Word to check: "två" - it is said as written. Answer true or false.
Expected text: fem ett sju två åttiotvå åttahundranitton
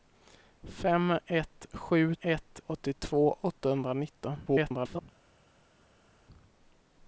false